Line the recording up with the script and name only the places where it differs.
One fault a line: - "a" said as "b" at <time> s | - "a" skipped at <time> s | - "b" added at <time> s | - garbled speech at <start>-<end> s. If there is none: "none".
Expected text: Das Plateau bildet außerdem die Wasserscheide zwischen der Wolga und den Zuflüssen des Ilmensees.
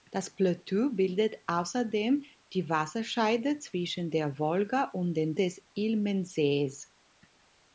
- "Zuflüssen" skipped at 5.4 s